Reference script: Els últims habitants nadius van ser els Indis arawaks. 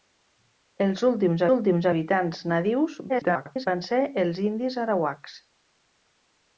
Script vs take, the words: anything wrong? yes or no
yes